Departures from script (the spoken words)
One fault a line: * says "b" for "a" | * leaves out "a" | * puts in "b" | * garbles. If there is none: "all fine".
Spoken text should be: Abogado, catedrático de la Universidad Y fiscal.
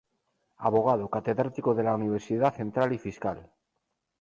* puts in "Central"